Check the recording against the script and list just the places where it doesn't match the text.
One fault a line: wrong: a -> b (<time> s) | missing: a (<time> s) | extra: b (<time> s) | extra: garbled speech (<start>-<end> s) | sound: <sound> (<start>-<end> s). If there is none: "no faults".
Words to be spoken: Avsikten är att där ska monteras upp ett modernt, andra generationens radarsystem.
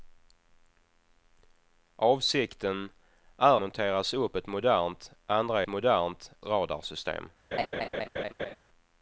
missing: att där ska (3.6 s)
wrong: generationens -> modernt (5.7 s)
sound: laugh (7.5-8.6 s)